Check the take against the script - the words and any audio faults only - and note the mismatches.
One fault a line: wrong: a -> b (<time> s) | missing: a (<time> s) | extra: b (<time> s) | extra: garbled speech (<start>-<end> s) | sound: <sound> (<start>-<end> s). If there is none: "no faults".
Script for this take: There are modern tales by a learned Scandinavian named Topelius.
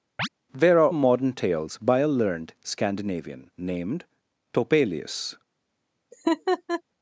sound: chirp (0.2-0.3 s)
sound: laugh (6.1-6.8 s)